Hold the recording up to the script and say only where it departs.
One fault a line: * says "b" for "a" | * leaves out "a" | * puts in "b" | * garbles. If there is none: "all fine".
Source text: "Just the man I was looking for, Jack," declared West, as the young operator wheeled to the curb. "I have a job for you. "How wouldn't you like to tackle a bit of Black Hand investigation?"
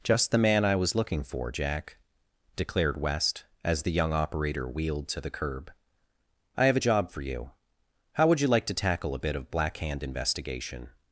* says "would" for "wouldn't"